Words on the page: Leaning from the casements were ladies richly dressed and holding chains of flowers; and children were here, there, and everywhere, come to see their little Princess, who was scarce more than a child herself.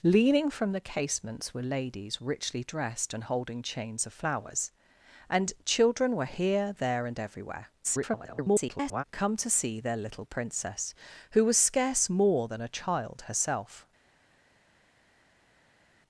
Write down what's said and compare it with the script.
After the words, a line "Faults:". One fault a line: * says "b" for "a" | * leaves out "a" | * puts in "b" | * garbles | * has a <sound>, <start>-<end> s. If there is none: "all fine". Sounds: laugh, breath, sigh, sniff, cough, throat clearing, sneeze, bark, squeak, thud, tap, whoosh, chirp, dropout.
Leaning from the casements were ladies richly dressed and holding chains of flowers; and children were here, there, and everywhere, [garbled] come to see their little Princess, who was scarce more than a child herself.
Faults:
* garbles